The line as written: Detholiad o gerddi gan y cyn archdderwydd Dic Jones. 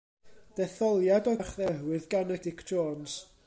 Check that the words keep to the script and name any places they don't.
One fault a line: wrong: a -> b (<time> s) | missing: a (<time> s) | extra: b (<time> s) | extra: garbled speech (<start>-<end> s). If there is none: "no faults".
wrong: gerddi -> archdderwydd (1.4 s)
missing: cyn archdderwydd (2.4 s)